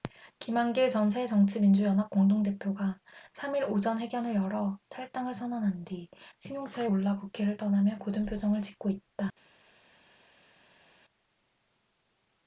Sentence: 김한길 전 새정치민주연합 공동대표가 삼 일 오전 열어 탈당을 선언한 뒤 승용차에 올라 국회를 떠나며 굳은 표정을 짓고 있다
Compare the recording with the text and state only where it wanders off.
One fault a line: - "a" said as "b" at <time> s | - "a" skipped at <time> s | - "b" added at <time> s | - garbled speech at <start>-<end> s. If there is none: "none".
- "회견을" added at 4.0 s